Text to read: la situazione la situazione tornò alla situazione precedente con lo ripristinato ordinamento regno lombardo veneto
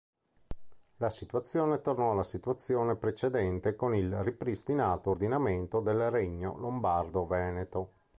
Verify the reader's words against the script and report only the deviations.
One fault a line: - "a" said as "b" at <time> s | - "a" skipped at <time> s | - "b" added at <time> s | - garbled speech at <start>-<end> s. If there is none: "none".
- "la situazione" skipped at 1.8 s
- "lo" said as "il" at 3.9 s
- "del" added at 5.8 s